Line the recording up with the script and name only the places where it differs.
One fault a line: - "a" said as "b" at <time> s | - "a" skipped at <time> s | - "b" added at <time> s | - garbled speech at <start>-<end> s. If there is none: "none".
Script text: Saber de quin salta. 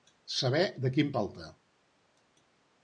none